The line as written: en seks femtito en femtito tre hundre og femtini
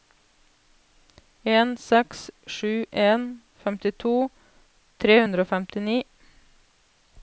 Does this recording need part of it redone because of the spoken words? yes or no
yes